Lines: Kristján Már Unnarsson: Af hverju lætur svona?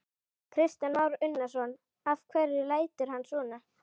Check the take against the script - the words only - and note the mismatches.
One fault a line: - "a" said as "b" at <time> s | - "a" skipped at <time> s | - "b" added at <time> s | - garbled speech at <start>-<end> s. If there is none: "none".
- "hann" added at 3.1 s